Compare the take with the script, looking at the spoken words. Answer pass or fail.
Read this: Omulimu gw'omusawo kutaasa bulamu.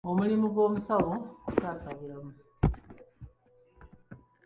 pass